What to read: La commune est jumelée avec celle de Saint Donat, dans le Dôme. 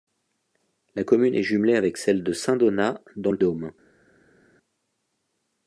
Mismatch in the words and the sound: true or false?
false